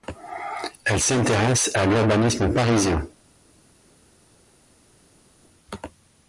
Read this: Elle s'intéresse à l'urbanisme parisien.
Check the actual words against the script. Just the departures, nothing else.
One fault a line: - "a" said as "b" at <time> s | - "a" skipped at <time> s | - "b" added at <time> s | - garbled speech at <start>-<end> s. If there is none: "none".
none